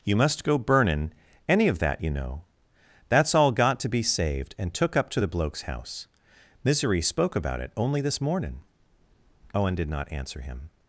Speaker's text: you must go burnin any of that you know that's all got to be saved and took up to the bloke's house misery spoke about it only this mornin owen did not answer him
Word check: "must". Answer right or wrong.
right